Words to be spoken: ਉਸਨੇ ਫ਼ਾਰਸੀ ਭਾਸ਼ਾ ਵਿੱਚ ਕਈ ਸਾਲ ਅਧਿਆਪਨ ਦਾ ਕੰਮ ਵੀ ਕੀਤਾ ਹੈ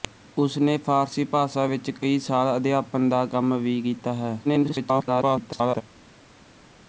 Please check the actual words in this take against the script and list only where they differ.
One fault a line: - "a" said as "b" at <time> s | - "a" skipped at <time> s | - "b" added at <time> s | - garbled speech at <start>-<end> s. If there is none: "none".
- garbled speech at 4.4-5.8 s